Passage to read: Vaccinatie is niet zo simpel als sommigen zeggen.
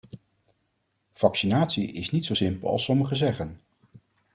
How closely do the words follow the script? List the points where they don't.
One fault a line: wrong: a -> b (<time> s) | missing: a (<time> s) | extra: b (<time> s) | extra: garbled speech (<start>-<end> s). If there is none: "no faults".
no faults